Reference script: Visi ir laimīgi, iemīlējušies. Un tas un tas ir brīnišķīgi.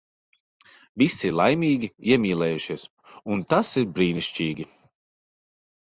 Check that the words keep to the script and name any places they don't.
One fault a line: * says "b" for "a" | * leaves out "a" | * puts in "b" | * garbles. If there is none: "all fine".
* leaves out "un tas"